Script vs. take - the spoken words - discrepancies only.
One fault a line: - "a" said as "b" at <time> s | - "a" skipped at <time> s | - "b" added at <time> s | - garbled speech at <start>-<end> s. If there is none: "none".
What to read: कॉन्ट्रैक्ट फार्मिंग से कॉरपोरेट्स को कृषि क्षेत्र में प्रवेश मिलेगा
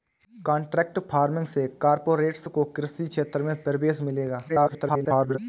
- garbled speech at 4.5-5.4 s